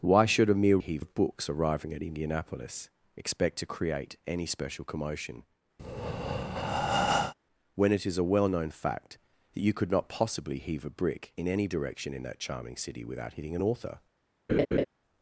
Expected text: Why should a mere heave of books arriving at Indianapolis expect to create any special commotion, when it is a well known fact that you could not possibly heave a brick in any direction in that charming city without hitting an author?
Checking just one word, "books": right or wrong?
right